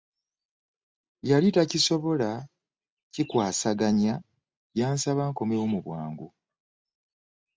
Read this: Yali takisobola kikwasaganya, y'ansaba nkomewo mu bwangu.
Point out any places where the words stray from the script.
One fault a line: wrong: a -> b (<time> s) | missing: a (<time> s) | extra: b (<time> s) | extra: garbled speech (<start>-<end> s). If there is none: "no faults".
no faults